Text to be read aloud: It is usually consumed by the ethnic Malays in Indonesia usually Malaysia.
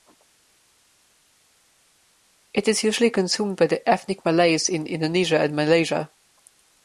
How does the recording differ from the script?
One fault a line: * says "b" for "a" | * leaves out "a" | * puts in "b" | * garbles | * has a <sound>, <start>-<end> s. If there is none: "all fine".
* says "and" for "usually"